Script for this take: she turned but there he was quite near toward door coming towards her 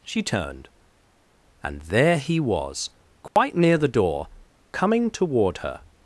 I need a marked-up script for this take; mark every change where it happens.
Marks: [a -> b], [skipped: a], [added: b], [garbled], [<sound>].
she turned [but -> and] there he was quite [dropout] near [toward -> the] door coming [towards -> toward] her